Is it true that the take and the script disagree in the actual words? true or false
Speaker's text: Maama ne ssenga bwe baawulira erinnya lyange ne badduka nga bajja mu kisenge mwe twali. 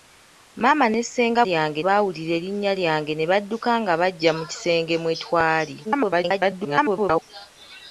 true